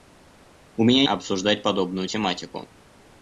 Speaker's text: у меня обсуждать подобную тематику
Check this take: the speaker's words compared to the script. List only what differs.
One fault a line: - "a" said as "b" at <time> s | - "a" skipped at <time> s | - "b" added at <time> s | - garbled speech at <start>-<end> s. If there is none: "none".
none